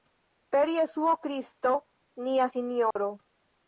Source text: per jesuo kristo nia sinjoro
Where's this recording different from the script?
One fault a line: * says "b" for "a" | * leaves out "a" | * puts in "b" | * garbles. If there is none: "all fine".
all fine